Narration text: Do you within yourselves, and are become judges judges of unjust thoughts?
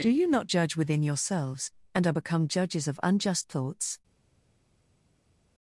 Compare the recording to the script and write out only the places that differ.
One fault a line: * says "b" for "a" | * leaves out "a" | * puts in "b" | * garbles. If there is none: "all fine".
* puts in "not judge"
* leaves out "judges"